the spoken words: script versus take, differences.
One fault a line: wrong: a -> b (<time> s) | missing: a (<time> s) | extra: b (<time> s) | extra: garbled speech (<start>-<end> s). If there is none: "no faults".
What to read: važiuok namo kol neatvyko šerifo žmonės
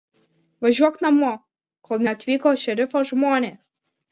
no faults